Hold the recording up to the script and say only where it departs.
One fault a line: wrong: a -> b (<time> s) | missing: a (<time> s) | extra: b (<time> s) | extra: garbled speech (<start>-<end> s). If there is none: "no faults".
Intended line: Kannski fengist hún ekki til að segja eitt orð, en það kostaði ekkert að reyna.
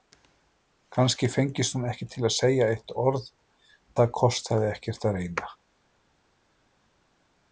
missing: en (3.3 s)